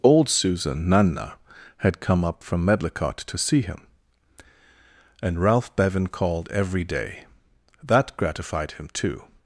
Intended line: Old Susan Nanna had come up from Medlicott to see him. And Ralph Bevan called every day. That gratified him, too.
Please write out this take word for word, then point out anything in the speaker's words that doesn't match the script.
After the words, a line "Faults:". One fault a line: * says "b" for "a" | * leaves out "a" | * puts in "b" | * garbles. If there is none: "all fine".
Old Susan Nanna had come up from Medlicott to see him. And Ralph Bevan called every day. That gratified him, too.
Faults:
all fine